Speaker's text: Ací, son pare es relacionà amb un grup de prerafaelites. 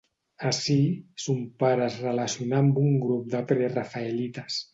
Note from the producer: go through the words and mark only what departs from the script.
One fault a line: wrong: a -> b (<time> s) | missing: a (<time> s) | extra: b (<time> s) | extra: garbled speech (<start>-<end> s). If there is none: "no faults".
no faults